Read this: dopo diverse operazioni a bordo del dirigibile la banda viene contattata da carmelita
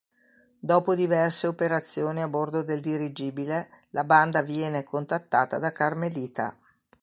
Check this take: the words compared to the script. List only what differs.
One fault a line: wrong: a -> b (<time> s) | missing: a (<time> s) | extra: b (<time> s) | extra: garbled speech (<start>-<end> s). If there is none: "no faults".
no faults